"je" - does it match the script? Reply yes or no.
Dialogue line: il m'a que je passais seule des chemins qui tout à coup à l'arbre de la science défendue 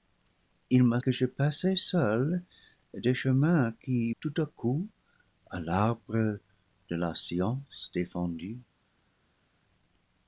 yes